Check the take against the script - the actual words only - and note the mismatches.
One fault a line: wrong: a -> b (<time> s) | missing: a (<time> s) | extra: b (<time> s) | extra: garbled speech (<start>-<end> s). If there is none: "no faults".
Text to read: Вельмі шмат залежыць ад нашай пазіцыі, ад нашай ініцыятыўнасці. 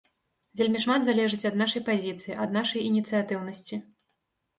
no faults